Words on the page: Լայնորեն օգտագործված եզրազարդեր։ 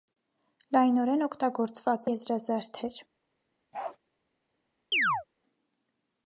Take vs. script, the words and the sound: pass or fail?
fail